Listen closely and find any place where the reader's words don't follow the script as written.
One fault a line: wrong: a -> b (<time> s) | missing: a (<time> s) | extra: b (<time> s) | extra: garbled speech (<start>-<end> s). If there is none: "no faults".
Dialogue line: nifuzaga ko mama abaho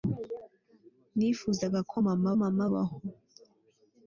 extra: mama (2.4 s)